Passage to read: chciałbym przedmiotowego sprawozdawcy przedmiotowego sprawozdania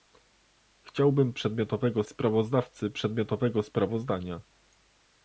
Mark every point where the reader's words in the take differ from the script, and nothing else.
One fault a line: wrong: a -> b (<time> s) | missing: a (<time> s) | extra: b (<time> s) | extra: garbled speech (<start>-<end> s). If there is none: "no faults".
no faults